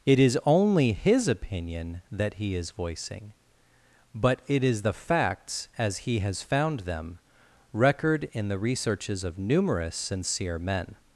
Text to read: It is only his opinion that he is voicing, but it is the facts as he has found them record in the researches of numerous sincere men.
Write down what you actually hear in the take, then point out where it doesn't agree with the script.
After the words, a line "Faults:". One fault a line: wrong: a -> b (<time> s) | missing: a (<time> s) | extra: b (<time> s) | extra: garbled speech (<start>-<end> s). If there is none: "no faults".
It is only his opinion that he is voicing, but it is the facts as he has found them record in the researches of numerous sincere men.
Faults:
no faults